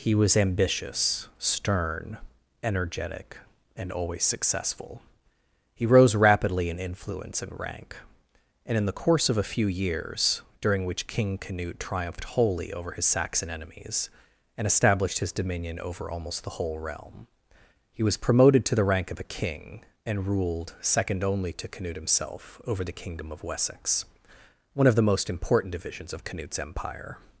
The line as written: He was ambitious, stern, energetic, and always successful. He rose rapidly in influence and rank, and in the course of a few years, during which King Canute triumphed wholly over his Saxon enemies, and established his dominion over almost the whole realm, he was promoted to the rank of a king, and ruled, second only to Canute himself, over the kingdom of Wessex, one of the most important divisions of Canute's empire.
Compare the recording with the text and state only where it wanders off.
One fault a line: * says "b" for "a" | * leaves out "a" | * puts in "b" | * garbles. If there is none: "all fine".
all fine